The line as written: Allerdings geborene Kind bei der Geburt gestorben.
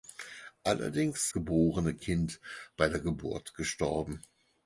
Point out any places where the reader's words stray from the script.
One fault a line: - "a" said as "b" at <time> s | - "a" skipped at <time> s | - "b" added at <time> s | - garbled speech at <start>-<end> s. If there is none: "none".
none